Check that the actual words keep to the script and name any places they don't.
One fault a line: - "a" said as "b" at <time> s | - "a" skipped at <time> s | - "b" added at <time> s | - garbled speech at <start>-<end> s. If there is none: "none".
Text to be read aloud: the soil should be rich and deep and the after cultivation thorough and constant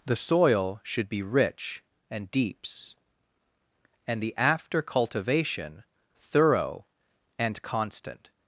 - "deep" said as "deeps" at 2.3 s